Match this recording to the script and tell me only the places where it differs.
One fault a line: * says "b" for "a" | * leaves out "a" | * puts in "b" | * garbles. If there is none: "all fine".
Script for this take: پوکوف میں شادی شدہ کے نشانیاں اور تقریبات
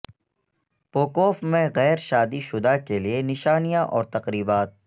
* puts in "غیر"
* puts in "لئے"